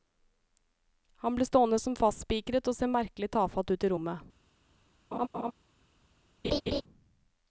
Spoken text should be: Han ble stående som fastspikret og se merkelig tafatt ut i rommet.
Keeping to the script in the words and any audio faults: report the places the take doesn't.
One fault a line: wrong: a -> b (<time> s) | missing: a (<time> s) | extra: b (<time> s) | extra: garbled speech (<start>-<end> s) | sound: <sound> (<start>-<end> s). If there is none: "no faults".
sound: laugh (5.1-5.5 s)
sound: laugh (6.4-6.8 s)